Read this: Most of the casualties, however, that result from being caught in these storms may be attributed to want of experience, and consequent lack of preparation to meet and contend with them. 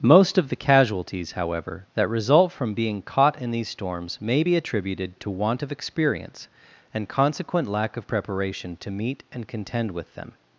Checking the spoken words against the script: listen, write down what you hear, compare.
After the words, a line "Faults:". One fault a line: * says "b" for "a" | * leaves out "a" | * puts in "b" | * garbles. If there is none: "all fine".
Most of the casualties, however, that result from being caught in these storms may be attributed to want of experience, and consequent lack of preparation to meet and contend with them.
Faults:
all fine